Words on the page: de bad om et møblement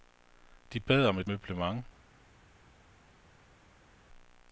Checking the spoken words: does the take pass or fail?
pass